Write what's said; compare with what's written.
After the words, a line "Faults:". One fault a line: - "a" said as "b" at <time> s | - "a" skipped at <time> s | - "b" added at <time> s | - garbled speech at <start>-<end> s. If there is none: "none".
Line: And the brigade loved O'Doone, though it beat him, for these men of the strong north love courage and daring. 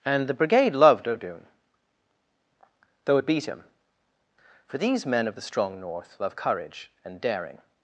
And the brigade loved O'Doone, though it beat him, for these men of the strong north love courage and daring.
Faults:
none